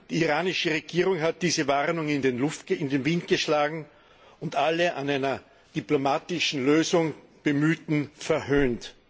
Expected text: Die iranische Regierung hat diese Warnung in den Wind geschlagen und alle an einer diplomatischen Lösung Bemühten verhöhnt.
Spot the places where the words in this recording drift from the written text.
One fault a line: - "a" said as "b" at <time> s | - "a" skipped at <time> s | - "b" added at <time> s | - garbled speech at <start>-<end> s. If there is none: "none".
none